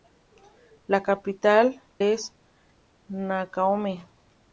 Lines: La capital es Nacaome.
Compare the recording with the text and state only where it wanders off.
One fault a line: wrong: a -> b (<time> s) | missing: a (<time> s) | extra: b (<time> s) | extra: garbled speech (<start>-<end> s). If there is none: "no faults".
no faults